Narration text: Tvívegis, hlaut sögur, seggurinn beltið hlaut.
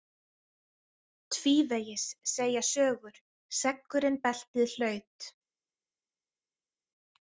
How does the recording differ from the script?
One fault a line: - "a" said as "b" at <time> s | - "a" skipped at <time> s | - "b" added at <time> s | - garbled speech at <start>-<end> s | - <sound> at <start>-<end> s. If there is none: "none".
- "hlaut" said as "segja" at 2.3 s